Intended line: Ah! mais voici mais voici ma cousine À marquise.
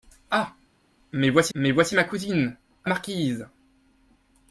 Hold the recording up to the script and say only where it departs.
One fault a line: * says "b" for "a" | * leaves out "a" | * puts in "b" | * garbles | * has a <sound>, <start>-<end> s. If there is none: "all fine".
all fine